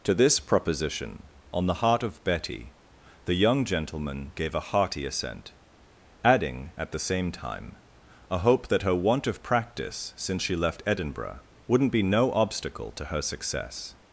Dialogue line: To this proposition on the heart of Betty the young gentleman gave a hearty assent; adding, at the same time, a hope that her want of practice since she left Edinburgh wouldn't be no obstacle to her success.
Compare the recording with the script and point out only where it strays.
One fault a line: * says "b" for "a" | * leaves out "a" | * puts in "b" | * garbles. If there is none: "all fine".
all fine